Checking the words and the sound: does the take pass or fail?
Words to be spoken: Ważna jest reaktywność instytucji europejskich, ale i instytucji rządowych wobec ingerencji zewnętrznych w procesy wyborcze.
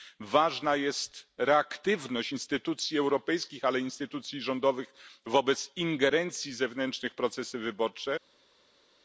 pass